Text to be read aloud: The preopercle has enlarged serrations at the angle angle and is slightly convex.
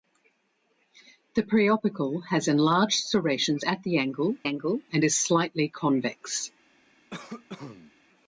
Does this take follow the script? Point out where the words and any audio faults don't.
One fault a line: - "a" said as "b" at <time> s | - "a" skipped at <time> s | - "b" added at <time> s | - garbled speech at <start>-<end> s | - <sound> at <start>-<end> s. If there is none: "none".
- cough at 7.1-7.9 s